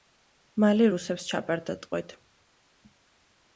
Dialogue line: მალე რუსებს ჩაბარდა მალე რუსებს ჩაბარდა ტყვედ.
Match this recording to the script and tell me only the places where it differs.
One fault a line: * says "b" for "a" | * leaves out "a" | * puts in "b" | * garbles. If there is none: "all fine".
* leaves out "მალე რუსებს ჩაბარდა"